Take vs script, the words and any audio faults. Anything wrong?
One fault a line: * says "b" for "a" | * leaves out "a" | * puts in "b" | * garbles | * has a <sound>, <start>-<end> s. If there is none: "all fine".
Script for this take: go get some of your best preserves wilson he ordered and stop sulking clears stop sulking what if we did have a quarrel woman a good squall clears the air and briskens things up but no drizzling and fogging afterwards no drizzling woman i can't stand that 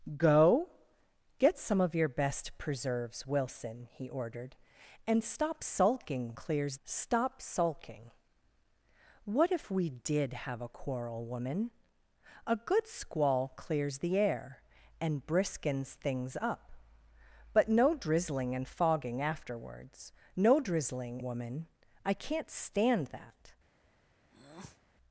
* has a breath, 24.3-24.8 s